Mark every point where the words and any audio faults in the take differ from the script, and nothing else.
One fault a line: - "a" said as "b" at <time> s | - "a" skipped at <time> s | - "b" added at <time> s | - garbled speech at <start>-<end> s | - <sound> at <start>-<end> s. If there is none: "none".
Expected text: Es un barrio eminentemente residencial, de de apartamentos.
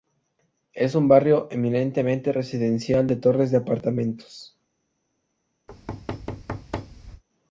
- "torres" added at 3.2 s
- thud at 5.7-7.2 s